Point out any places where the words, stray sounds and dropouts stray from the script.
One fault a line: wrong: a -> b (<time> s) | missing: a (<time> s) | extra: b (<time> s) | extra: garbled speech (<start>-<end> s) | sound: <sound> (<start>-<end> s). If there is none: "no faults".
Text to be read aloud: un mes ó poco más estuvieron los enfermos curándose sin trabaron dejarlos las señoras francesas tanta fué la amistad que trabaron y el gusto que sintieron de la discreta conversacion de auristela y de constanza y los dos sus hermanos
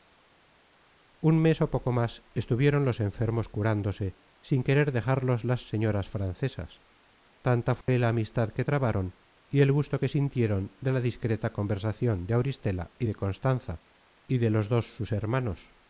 wrong: trabaron -> querer (4.6 s)
sound: dropout (7.8-7.9 s)
extra: de (14.4 s)